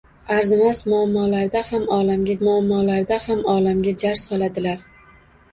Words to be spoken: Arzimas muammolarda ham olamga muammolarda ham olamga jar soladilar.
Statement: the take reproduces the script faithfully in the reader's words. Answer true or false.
true